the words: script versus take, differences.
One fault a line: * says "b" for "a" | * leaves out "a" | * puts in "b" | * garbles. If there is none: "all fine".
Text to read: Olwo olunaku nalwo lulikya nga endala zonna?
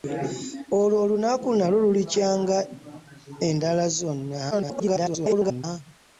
* garbles